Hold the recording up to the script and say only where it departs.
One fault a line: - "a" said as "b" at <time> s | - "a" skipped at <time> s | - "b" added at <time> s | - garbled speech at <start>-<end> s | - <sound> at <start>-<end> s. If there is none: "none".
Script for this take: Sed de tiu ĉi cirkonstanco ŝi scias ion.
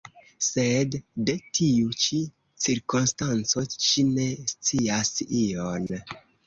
- "ne" added at 4.2 s
- dropout at 5.9-5.9 s